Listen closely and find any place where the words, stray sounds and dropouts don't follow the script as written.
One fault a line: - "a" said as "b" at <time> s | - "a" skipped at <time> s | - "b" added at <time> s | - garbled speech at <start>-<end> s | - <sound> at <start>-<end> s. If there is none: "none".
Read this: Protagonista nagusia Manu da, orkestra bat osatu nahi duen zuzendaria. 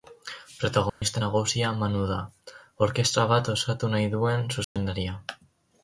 - dropout at 0.9-1.0 s
- dropout at 4.6-4.8 s